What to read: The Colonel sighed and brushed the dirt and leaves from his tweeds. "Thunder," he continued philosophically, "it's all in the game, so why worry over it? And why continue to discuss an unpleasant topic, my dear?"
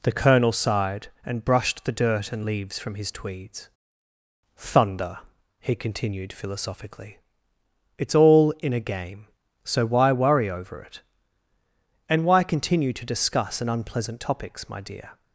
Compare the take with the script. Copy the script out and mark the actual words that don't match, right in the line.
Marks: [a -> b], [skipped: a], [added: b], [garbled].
The Colonel sighed and brushed the dirt and leaves from his tweeds. "Thunder," he continued philosophically, "it's all in [the -> a] game, so why worry over it? And why continue to discuss an unpleasant [topic, -> topics] my dear?"